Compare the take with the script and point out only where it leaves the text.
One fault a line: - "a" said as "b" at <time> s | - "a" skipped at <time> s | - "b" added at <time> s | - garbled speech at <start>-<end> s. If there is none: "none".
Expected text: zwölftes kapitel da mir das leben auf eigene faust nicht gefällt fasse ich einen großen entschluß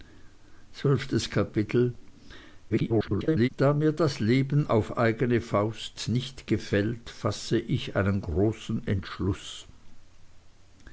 - garbled speech at 2.7-3.5 s